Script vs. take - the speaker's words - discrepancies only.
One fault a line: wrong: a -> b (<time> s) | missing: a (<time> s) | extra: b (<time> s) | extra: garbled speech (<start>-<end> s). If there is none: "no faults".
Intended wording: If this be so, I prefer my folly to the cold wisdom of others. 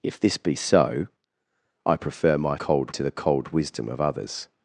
wrong: folly -> cold (2.5 s)